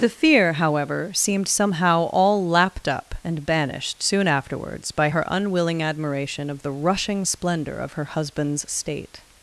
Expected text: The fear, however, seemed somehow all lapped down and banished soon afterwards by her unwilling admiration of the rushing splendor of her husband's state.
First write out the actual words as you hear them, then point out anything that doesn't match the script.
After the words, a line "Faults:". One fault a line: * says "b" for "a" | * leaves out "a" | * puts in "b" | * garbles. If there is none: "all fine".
The fear, however, seemed somehow all lapped up and banished soon afterwards by her unwilling admiration of the rushing splendor of her husband's state.
Faults:
* says "up" for "down"